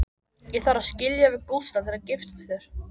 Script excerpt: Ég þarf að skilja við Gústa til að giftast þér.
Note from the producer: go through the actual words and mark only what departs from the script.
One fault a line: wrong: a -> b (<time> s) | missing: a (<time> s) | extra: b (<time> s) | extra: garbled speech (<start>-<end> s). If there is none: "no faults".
no faults